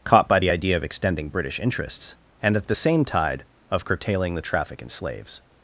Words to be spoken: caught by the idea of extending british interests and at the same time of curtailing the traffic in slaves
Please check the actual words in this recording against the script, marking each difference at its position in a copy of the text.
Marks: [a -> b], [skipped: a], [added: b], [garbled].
caught by the idea of extending british interests and at the same [time -> tide] of curtailing the traffic in slaves